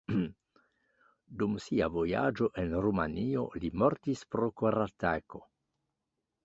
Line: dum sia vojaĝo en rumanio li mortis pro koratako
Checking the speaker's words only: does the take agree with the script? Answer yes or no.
yes